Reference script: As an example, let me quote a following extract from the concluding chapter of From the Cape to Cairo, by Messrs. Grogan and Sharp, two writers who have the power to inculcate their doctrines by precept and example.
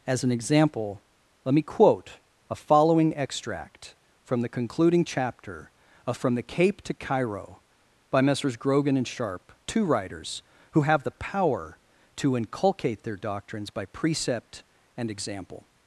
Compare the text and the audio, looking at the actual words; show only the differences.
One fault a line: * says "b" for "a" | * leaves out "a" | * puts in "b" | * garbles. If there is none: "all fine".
all fine